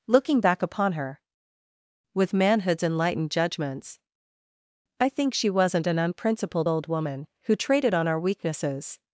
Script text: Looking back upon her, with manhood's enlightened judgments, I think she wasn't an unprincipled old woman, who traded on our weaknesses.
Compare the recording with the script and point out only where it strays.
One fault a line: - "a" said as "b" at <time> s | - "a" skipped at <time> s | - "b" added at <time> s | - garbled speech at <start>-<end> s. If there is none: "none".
none